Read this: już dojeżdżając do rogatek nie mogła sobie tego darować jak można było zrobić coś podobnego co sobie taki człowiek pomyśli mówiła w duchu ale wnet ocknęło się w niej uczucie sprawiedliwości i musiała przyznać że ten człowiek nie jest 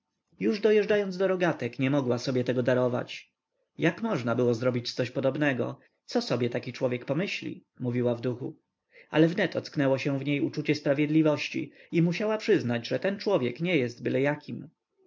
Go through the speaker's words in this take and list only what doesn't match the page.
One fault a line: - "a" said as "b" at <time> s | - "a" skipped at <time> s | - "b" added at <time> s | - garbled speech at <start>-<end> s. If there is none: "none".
none